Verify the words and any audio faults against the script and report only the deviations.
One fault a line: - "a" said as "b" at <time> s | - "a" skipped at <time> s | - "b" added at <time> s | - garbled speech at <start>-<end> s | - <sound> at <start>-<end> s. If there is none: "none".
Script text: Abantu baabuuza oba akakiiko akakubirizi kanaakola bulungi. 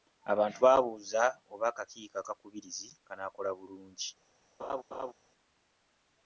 - laugh at 4.6-5.1 s